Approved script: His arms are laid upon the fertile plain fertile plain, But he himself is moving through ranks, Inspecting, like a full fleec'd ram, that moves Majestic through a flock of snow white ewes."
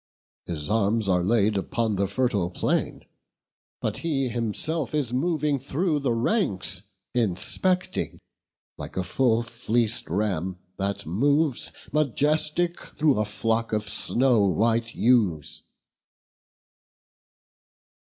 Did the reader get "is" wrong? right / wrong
right